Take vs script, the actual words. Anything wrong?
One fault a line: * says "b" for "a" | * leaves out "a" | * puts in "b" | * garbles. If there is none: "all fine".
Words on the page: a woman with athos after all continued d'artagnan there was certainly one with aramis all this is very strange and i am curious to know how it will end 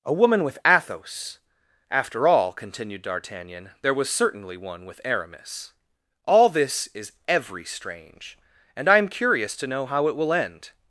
* says "every" for "very"